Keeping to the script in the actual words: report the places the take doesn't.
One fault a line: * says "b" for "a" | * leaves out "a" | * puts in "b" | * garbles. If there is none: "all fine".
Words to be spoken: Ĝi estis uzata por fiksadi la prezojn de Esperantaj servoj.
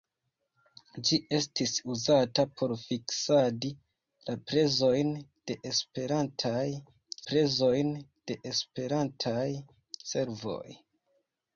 * puts in "prezojn de Esperantaj"